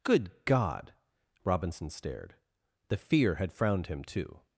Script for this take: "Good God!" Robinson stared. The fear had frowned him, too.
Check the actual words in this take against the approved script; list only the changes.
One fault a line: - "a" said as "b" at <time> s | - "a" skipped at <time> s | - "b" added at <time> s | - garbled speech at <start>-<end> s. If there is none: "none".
none